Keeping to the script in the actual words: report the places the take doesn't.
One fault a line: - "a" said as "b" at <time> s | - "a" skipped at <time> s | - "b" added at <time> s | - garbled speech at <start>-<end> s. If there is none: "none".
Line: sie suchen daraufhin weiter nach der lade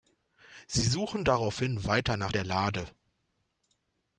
none